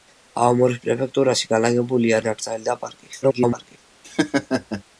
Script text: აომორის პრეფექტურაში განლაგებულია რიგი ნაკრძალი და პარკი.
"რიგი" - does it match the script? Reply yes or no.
no